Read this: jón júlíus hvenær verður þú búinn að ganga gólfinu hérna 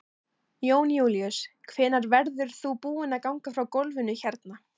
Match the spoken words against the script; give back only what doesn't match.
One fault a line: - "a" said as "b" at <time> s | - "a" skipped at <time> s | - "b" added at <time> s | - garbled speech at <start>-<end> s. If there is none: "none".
- "frá" added at 3.6 s